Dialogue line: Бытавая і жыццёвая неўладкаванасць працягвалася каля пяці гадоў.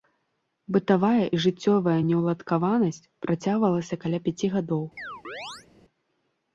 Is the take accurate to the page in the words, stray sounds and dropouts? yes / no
no